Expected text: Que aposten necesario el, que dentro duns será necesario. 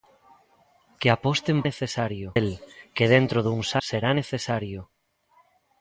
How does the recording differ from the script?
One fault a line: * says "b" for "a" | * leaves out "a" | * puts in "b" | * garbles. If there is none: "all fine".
all fine